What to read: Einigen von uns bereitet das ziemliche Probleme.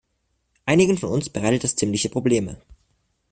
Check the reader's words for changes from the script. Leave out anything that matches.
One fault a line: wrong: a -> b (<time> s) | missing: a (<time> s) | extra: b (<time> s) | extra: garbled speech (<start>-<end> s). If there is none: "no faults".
no faults